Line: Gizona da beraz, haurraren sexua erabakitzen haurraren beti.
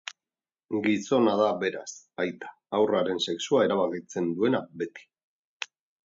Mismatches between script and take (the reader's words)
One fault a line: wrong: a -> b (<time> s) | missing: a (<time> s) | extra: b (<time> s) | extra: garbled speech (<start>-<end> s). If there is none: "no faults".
extra: aita (2.2 s)
wrong: haurraren -> duena (4.4 s)